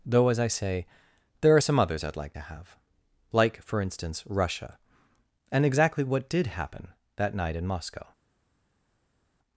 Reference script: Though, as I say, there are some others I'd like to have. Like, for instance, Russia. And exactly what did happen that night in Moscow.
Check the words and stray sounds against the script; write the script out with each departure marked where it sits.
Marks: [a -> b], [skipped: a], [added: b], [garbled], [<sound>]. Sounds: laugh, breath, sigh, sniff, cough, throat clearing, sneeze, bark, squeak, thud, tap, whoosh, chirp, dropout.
Though, as I say, there are some others I'd like to have. Like, for instance, Russia. And exactly what did happen that night in Moscow.